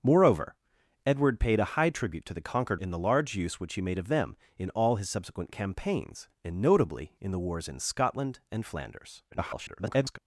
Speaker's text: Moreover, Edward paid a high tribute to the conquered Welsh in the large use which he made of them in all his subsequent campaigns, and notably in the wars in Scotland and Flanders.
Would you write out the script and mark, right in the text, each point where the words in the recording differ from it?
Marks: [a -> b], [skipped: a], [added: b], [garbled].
Moreover, Edward paid a high tribute to the conquered [skipped: Welsh] in the large use which he made of them in all his subsequent campaigns, and notably in the wars in Scotland and Flanders. [garbled]